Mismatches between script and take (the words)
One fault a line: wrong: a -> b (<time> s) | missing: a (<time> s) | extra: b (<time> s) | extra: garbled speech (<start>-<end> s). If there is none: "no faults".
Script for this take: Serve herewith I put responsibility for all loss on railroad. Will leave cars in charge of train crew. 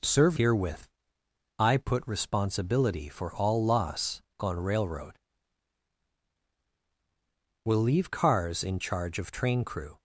no faults